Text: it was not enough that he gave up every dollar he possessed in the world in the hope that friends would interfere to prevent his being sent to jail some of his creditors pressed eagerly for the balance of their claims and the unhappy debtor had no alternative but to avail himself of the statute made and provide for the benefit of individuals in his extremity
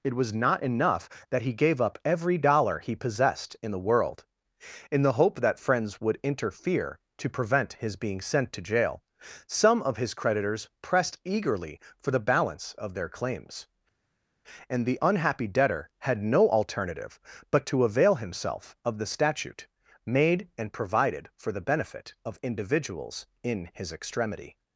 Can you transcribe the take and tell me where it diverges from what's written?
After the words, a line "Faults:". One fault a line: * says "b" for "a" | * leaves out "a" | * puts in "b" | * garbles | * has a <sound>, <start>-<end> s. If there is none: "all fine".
it was not enough that he gave up every dollar he possessed in the world in the hope that friends would interfere to prevent his being sent to jail some of his creditors pressed eagerly for the balance of their claims and the unhappy debtor had no alternative but to avail himself of the statute made and provided for the benefit of individuals in his extremity
Faults:
* says "provided" for "provide"